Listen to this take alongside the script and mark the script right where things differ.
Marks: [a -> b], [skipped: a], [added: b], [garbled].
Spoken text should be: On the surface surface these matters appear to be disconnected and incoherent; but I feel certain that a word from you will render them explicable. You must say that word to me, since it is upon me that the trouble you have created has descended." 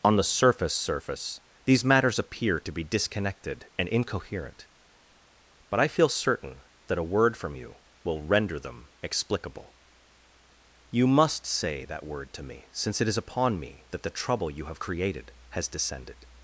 On the surface surface these matters appear to be disconnected and incoherent; but I feel certain that a word from you will render them explicable. You must say that word to me, since it is upon me that the trouble you have created has descended."